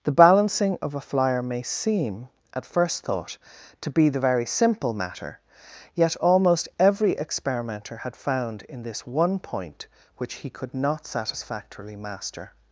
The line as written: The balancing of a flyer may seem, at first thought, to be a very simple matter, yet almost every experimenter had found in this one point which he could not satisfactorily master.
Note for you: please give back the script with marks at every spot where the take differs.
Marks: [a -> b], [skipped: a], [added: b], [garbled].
The balancing of a flyer may seem, at first thought, to be [a -> the] very simple matter, yet almost every experimenter had found in this one point which he could not satisfactorily master.